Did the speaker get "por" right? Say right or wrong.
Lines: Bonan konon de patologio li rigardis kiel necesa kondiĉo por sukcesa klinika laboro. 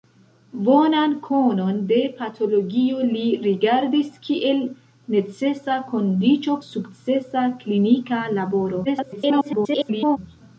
wrong